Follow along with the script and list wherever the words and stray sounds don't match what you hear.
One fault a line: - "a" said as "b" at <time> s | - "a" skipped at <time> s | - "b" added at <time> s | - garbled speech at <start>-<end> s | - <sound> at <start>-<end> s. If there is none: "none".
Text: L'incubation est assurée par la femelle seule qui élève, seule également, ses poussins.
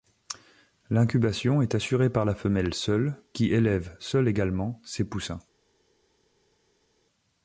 none